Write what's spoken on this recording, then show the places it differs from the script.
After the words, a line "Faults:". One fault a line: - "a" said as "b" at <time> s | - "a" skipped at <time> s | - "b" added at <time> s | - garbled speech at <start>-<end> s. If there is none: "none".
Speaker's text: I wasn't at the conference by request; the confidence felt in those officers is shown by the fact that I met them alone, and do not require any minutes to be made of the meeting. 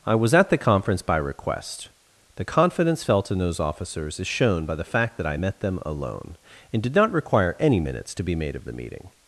I was at the conference by request; the confidence felt in those officers is shown by the fact that I met them alone, and did not require any minutes to be made of the meeting.
Faults:
- "wasn't" said as "was" at 0.1 s
- "do" said as "did" at 6.8 s